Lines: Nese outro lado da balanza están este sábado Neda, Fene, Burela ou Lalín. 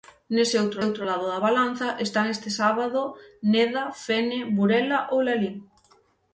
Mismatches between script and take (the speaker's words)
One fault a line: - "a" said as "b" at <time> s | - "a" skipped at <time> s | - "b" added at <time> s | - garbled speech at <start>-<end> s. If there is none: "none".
- "outro" added at 0.9 s